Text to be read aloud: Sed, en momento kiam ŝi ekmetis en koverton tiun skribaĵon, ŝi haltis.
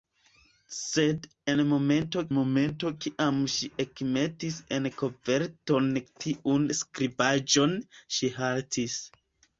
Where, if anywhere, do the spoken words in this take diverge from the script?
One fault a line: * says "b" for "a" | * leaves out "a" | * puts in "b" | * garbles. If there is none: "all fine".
* puts in "momento"